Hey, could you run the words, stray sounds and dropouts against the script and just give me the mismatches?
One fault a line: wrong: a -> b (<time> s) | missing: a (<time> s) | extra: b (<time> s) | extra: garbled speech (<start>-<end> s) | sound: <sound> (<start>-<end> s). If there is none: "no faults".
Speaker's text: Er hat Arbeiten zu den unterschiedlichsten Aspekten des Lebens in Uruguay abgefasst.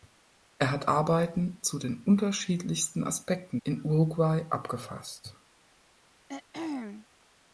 missing: des Lebens (3.6 s)
sound: throat clearing (6.3-7.1 s)